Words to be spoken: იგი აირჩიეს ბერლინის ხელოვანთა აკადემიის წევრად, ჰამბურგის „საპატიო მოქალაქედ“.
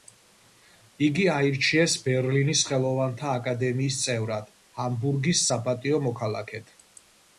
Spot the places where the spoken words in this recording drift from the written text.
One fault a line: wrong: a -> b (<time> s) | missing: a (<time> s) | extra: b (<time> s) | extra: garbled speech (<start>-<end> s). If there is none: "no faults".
no faults